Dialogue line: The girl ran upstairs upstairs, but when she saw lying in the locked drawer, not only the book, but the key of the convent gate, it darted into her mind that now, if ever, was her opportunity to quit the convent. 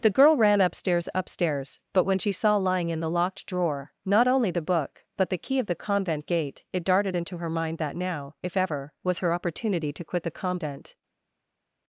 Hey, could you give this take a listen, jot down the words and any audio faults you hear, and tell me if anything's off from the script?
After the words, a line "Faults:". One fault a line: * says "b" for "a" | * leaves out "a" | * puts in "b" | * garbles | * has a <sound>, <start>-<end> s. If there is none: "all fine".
The girl ran upstairs upstairs, but when she saw lying in the locked drawer, not only the book, but the key of the convent gate, it darted into her mind that now, if ever, was her opportunity to quit the convent.
Faults:
all fine